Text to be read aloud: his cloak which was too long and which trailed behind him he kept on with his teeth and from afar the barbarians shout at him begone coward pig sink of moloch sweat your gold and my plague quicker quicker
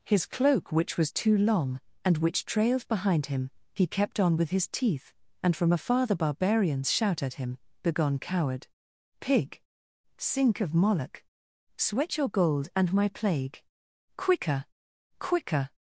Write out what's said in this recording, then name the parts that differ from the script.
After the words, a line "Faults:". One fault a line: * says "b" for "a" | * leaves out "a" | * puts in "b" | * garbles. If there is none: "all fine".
his cloak which was too long and which trailed behind him he kept on with his teeth and from afar the barbarians shout at him begone coward pig sink of moloch sweat your gold and my plague quicker quicker
Faults:
all fine